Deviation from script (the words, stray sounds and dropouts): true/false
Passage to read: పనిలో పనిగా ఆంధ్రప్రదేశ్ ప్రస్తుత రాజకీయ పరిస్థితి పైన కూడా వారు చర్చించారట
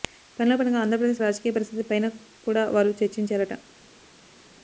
true